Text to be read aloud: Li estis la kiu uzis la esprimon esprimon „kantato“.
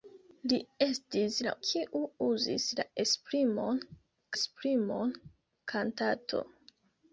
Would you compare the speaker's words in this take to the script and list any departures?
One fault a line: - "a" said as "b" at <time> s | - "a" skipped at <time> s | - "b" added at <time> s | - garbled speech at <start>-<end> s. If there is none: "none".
none